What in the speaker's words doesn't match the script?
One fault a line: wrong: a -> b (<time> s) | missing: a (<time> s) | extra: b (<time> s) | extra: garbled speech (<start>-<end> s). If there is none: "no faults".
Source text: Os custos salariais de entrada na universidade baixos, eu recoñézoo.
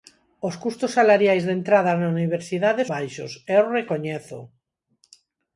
no faults